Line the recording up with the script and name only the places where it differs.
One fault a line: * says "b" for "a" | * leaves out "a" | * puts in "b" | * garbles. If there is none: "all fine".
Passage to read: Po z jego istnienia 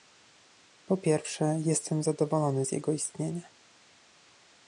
* puts in "pierwsze jestem zadowolony"